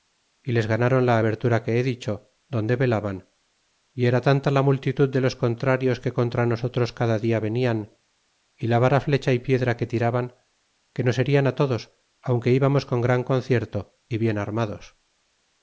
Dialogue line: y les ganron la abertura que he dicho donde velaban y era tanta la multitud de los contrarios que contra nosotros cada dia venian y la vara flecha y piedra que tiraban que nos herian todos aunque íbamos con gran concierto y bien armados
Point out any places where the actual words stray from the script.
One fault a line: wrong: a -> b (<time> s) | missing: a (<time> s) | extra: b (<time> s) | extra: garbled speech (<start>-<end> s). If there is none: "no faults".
no faults